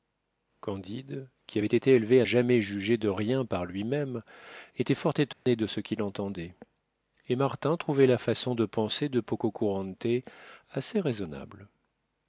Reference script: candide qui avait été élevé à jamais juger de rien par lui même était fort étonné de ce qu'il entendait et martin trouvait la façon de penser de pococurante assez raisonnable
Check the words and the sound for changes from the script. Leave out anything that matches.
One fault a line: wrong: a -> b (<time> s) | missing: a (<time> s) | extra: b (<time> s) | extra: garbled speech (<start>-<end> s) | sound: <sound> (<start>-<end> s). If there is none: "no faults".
sound: dropout (5.3-5.5 s)